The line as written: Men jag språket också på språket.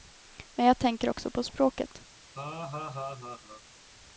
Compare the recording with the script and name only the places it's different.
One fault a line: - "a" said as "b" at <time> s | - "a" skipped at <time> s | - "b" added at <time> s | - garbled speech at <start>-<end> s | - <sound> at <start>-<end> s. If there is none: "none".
- "språket" said as "tänker" at 0.8 s
- laugh at 2.3-3.6 s